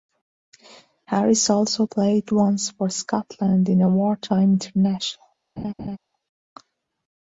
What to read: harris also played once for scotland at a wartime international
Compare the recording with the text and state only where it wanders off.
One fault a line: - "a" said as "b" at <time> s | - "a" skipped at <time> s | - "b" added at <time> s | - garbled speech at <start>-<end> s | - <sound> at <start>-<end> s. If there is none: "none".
- "at" said as "in" at 3.7 s
- laugh at 5.6-6.0 s